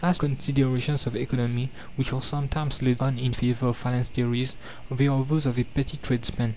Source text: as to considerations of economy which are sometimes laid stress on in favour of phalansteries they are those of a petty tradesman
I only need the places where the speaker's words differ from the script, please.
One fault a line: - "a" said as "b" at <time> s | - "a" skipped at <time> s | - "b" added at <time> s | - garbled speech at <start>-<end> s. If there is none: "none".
- "to" skipped at 0.2 s
- "stress" skipped at 3.0 s